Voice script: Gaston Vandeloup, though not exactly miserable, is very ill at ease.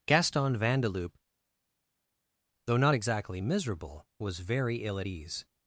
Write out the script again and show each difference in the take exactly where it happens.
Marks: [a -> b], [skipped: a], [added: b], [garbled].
Gaston Vandeloup, though not exactly miserable, [is -> was] very ill at ease.